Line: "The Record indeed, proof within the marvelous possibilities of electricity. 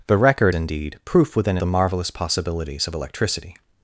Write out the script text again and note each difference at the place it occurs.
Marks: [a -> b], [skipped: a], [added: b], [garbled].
"The Record indeed, proof within the marvelous possibilities of electricity.